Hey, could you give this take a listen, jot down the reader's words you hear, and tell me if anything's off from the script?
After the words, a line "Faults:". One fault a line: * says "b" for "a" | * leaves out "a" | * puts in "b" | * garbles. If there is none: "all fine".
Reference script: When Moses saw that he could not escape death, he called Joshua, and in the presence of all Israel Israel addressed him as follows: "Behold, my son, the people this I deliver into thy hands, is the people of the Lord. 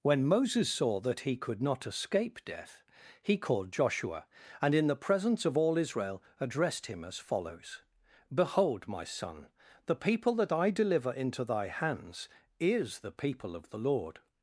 When Moses saw that he could not escape death, he called Joshua, and in the presence of all Israel addressed him as follows: "Behold, my son, the people that I deliver into thy hands, is the people of the Lord.
Faults:
* leaves out "Israel"
* says "that" for "this"